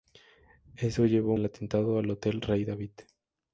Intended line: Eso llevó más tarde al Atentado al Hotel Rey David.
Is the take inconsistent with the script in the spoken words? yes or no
yes